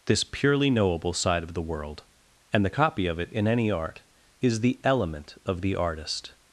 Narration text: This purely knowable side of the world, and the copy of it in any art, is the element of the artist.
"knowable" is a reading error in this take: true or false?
false